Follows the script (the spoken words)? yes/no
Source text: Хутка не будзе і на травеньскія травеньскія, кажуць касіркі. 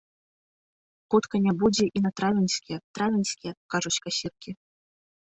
yes